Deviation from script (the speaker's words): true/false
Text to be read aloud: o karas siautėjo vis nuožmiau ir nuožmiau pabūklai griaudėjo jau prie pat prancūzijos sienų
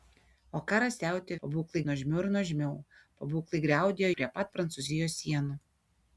true